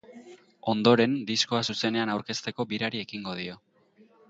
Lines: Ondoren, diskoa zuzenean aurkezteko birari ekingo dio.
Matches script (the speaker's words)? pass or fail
pass